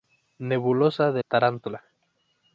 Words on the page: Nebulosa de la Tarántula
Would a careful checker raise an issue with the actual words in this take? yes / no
yes